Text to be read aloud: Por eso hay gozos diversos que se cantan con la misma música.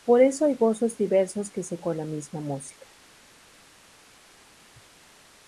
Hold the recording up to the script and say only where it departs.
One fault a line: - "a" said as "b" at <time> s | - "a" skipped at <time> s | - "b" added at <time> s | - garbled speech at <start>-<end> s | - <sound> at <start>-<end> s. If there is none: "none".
- "cantan" skipped at 1.8 s